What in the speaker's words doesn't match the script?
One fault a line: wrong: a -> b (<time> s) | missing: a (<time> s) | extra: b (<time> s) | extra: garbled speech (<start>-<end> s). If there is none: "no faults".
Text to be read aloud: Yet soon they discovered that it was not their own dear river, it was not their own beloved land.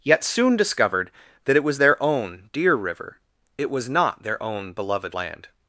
missing: they (0.6 s)
missing: not (1.8 s)